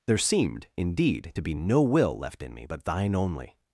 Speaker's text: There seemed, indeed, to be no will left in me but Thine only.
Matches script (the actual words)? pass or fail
pass